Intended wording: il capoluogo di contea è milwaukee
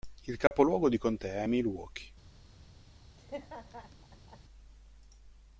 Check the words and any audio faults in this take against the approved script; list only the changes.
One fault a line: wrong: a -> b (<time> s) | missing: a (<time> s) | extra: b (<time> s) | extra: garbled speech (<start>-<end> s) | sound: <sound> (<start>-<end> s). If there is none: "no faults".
sound: dropout (0.5-0.5 s)
sound: laugh (3.2-4.4 s)